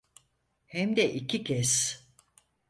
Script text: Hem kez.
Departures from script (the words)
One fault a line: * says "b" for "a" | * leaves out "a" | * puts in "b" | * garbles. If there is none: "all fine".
* puts in "de iki"